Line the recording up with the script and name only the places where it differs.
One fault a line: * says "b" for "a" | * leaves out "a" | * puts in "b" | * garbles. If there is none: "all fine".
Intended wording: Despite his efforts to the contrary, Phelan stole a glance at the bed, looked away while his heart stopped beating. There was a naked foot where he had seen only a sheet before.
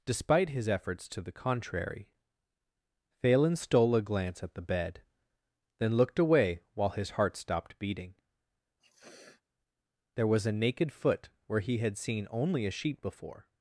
* puts in "then"